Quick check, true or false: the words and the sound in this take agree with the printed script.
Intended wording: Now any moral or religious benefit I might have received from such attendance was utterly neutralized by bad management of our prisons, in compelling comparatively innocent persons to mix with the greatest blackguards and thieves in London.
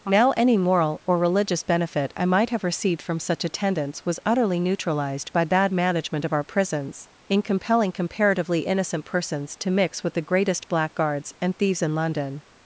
true